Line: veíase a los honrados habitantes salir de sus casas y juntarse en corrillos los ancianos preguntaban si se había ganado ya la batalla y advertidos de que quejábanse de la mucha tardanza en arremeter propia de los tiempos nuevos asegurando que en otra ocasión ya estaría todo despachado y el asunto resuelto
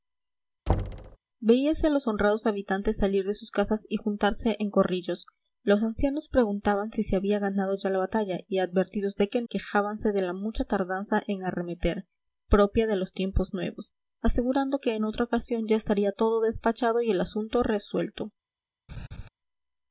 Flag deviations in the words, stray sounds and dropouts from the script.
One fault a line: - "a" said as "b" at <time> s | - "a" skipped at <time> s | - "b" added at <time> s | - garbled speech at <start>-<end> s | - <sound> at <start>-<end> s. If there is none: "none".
- thud at 0.7-1.2 s
- laugh at 18.9-19.3 s